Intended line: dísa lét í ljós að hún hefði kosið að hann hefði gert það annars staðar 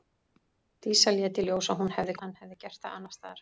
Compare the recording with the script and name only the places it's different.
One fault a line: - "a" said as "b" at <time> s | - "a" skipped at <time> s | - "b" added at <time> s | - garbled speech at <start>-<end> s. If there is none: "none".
- "kosið" skipped at 2.1 s